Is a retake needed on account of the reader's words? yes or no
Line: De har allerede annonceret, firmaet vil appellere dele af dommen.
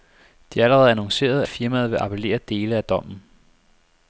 no